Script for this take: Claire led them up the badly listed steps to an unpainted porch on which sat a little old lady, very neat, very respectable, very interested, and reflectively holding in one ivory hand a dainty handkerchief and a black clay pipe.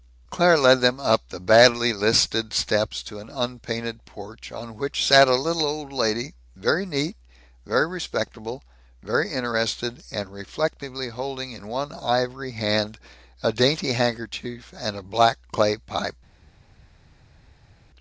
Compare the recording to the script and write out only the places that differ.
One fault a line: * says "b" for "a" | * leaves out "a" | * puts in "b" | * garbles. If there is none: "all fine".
all fine